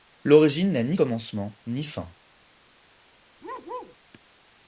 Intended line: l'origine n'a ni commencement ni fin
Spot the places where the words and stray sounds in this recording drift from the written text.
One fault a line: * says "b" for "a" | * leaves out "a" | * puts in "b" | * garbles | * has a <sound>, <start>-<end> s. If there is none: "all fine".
* has a bark, 3.4-4.0 s